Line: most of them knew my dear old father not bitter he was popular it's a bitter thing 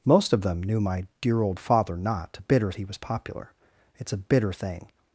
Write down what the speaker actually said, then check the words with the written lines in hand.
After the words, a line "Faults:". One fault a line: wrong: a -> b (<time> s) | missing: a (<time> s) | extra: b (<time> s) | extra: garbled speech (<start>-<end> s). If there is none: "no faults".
most of them knew my dear old father not bitter he was popular it's a bitter thing
Faults:
no faults